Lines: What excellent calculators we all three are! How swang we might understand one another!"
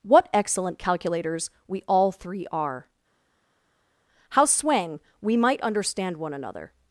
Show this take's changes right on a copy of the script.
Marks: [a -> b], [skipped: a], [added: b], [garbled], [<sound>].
What excellent calculators we all three are! How swang we might understand one another!"